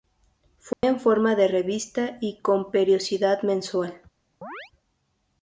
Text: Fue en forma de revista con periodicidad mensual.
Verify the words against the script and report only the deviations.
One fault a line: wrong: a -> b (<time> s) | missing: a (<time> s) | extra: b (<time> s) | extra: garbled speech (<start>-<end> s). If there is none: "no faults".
extra: y (2.2 s)